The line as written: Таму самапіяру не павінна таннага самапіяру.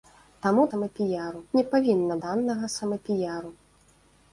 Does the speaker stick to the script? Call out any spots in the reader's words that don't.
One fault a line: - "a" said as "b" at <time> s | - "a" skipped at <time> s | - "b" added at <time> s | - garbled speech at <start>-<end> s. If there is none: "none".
none